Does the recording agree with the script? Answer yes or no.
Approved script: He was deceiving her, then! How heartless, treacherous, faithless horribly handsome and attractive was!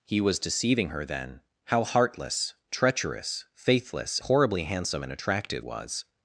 yes